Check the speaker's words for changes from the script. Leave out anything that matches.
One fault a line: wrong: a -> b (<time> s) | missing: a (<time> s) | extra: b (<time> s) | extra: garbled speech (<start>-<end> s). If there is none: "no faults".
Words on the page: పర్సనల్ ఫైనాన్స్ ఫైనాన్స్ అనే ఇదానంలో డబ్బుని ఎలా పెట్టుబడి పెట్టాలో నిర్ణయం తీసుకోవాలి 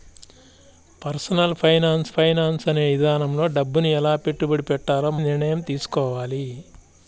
no faults